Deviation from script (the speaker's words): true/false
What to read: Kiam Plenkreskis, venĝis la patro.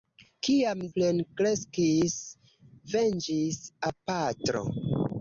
false